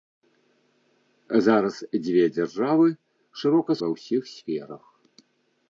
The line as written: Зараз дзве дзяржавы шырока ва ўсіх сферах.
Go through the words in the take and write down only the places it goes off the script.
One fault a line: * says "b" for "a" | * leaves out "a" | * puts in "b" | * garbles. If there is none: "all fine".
all fine